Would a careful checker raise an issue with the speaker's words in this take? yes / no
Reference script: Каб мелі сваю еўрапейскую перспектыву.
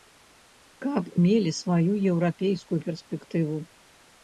no